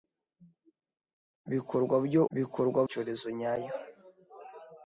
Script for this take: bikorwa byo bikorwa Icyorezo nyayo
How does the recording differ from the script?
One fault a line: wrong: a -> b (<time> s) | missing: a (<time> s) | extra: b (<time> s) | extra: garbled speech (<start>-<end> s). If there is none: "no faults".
no faults